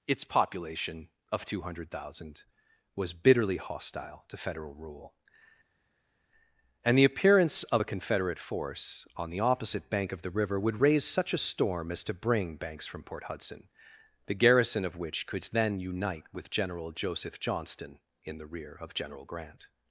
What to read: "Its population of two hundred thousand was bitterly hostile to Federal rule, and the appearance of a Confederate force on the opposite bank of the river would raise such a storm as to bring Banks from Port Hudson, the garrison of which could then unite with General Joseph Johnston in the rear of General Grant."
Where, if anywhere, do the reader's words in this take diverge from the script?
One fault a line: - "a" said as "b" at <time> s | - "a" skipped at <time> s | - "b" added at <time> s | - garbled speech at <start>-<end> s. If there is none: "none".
none